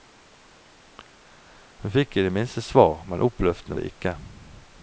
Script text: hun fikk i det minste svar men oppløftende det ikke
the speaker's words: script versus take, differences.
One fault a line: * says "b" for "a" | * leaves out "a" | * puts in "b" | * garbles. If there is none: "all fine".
all fine